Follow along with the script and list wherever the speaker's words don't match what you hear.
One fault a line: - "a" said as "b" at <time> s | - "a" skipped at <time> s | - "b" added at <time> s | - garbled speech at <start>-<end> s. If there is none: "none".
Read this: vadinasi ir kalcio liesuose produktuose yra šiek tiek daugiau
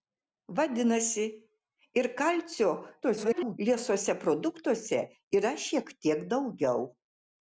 - garbled speech at 3.0-3.6 s